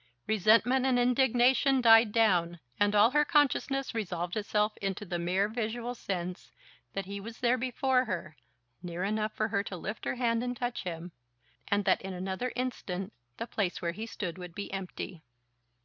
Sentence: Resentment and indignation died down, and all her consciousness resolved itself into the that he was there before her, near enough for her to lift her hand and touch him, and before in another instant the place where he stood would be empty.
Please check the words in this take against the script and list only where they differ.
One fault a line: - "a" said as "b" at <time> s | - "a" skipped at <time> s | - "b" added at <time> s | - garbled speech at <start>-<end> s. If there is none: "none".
- "mere visual sense" added at 5.2 s
- "before" said as "that" at 11.8 s